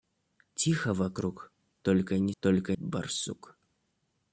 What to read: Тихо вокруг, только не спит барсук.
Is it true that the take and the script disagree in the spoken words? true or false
true